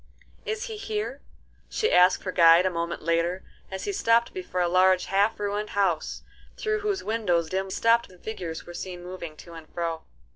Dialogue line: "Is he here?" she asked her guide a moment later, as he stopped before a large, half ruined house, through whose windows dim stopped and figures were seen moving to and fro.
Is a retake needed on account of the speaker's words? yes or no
no